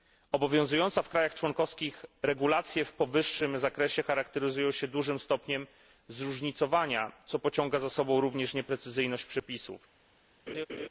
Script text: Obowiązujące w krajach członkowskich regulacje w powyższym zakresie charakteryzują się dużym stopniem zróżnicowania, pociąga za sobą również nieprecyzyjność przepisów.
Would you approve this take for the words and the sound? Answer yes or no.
no